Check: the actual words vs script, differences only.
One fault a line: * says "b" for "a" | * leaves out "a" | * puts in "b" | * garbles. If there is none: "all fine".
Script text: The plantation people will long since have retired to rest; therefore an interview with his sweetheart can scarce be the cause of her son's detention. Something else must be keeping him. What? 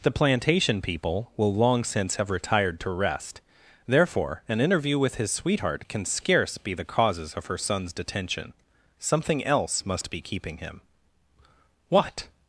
* says "causes" for "cause"